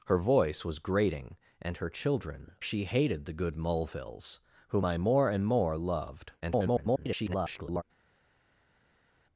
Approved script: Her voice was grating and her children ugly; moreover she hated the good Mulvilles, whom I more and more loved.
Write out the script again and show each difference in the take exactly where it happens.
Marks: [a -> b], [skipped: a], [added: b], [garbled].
Her voice was grating and her children [skipped: ugly; moreover] she hated the good Mulvilles, whom I more and more loved. [garbled]